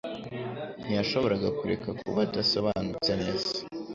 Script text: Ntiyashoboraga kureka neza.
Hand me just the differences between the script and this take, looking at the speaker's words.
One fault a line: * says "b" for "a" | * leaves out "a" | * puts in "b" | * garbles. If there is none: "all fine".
* puts in "kuba adasobanutse"